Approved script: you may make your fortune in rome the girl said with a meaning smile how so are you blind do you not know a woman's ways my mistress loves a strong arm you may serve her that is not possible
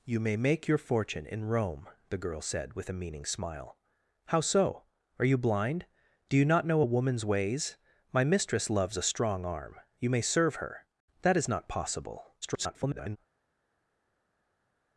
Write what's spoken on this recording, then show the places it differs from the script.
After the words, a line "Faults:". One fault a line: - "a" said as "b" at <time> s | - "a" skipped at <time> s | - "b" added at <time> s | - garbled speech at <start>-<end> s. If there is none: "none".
you may make your fortune in rome the girl said with a meaning smile how so are you blind do you not know a woman's ways my mistress loves a strong arm you may serve her that is not possible [garbled]
Faults:
- garbled speech at 12.4-13.2 s